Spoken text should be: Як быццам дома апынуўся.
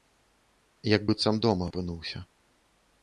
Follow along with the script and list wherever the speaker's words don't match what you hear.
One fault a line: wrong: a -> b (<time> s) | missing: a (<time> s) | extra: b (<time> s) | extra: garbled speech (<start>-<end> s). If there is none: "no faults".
no faults